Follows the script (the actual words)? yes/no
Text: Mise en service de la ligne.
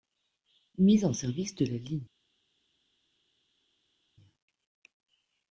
yes